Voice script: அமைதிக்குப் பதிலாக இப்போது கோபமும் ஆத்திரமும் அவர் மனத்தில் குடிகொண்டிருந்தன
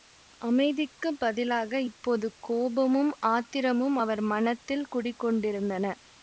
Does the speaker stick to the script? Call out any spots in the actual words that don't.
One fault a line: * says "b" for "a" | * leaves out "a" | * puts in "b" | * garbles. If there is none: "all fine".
all fine